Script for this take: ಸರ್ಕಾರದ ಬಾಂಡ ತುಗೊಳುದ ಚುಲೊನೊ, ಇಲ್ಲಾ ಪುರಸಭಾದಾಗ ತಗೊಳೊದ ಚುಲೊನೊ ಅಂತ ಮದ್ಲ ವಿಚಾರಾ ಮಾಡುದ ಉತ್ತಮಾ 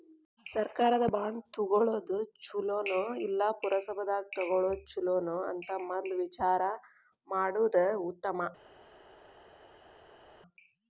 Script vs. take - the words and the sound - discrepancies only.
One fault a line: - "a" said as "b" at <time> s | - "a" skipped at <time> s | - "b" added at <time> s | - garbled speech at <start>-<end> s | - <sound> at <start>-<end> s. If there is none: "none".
none